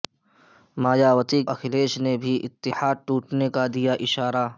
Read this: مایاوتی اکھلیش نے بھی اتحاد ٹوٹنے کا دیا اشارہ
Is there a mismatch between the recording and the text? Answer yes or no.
no